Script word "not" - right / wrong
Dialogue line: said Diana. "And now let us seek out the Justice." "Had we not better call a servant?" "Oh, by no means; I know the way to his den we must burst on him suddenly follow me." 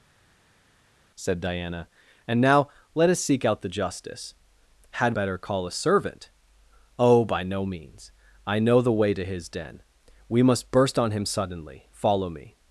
wrong